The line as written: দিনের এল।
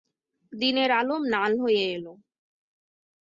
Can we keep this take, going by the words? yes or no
no